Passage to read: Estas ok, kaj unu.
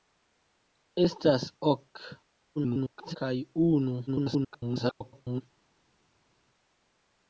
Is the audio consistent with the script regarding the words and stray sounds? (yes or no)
no